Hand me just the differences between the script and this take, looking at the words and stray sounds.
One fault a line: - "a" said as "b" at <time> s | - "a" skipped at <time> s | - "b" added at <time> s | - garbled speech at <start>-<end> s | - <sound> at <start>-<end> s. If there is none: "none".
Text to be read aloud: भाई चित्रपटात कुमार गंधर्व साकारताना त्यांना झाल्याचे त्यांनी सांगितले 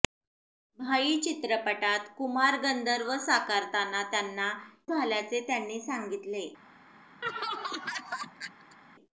- laugh at 7.2-8.8 s